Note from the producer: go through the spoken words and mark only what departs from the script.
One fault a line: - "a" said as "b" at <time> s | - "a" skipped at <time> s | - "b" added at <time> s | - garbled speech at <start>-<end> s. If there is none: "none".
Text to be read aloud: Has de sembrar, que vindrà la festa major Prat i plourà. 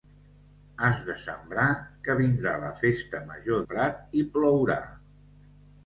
none